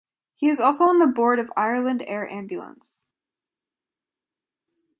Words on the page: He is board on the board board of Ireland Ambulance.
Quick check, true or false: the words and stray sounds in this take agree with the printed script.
false